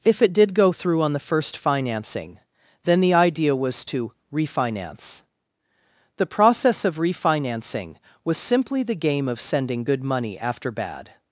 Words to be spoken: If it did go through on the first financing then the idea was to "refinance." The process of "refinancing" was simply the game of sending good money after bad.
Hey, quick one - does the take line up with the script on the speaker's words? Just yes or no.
yes